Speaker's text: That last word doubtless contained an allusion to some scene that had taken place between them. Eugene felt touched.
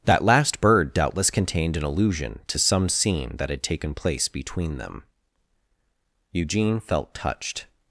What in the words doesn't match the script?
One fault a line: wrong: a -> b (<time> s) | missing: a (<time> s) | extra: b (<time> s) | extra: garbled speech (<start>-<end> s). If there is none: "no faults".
wrong: word -> bird (0.6 s)